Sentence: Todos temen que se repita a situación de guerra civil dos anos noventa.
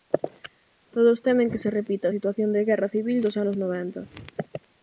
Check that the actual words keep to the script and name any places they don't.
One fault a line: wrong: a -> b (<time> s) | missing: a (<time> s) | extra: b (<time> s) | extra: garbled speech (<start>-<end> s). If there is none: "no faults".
no faults